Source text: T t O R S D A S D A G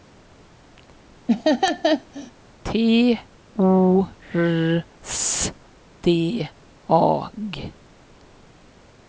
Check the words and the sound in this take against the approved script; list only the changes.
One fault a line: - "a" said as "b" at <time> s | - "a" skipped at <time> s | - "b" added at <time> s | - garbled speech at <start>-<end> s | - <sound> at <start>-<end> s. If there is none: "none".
- laugh at 1.3-2.3 s
- "t" skipped at 3.2 s
- "S D A" skipped at 7.3 s